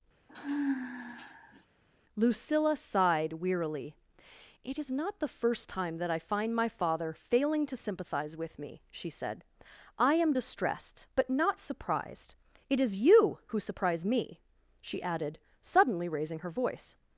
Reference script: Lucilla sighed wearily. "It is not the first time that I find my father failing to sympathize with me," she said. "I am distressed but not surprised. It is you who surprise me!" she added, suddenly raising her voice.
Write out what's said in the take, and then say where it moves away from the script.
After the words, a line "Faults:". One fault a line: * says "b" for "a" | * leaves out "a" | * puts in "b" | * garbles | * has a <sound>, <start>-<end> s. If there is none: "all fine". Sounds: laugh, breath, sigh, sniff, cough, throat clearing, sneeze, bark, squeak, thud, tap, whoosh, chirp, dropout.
Lucilla sighed wearily. "It is not the first time that I find my father failing to sympathize with me," she said. "I am distressed but not surprised. It is you who surprise me!" she added, suddenly raising her voice.
Faults:
* has a sigh, 0.3-1.7 s